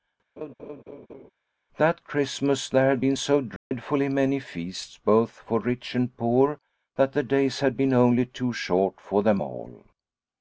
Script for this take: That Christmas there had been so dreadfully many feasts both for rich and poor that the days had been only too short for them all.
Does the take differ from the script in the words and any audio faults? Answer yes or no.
yes